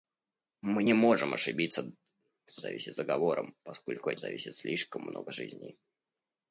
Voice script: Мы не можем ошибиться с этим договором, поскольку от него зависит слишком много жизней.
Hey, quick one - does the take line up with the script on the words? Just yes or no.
no